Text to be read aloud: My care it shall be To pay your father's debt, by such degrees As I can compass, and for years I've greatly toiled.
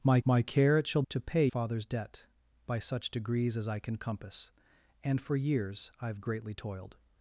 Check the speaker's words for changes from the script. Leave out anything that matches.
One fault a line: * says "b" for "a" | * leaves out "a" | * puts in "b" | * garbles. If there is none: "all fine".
* puts in "my"
* leaves out "be"
* leaves out "your"